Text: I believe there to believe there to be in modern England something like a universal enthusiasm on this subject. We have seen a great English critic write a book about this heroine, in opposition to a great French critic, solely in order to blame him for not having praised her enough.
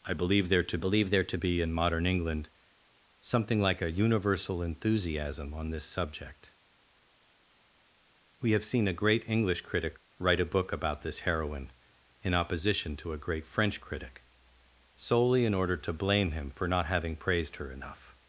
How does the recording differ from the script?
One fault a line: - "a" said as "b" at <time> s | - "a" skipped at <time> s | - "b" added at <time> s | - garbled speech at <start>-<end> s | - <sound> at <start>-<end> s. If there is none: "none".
none